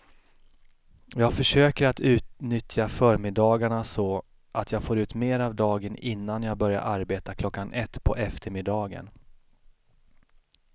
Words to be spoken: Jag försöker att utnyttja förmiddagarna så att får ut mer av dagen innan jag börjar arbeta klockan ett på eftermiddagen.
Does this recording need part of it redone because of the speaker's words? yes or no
yes